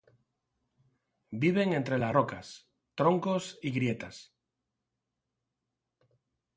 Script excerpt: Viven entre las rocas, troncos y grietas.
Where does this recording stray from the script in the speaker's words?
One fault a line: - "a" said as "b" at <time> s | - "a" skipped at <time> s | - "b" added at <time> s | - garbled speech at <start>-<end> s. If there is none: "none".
none